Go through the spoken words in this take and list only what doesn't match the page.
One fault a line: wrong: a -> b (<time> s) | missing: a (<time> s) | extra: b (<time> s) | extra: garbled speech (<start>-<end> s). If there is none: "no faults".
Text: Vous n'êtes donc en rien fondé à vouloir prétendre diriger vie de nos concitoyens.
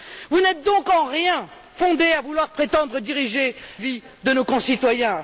no faults